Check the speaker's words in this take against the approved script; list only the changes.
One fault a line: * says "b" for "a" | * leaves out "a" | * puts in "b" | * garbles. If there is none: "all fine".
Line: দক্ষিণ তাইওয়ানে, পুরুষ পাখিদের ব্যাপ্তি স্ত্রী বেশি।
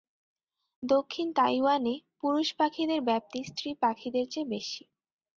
* puts in "পাখিদের চেয়ে"